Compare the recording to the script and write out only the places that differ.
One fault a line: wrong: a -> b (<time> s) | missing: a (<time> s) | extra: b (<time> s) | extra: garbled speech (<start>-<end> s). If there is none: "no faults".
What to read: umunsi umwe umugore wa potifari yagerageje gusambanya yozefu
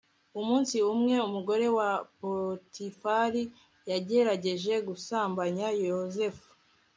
no faults